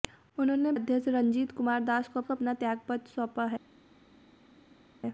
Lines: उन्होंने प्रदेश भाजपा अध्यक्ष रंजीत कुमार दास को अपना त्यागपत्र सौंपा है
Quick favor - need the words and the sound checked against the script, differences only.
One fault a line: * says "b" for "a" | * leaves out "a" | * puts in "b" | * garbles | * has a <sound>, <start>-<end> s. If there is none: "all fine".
* leaves out "प्रदेश भाजपा"
* puts in "को"